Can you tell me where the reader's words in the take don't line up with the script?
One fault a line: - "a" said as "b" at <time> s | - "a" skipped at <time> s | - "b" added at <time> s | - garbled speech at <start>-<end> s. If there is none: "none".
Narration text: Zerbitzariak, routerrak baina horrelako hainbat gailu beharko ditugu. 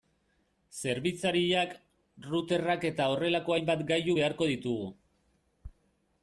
- "baina" said as "eta" at 2.9 s